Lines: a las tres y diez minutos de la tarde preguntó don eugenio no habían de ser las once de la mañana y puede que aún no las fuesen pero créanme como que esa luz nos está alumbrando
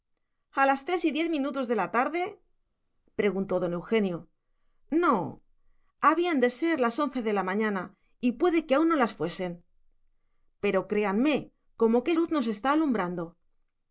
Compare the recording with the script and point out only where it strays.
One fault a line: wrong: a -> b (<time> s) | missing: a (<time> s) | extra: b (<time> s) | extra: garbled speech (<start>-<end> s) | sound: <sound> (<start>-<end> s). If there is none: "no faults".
missing: esa (12.1 s)